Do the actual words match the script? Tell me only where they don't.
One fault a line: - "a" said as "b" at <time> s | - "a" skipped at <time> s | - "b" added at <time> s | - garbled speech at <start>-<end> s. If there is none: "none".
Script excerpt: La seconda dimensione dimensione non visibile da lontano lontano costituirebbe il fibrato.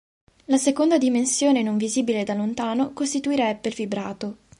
- "dimensione" skipped at 1.6 s
- "lontano" skipped at 2.9 s